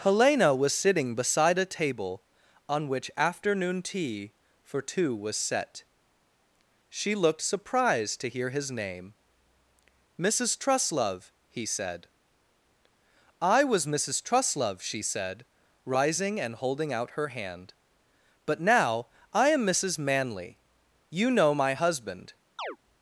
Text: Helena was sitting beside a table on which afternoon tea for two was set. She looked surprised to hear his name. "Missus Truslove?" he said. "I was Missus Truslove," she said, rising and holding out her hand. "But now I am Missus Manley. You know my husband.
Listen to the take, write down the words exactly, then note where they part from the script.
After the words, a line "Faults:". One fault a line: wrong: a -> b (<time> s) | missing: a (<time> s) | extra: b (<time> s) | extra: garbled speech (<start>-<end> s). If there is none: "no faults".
Helena was sitting beside a table on which afternoon tea for two was set. She looked surprised to hear his name. "Missus Truslove?" he said. "I was Missus Truslove," she said, rising and holding out her hand. "But now I am Missus Manley. You know my husband.
Faults:
no faults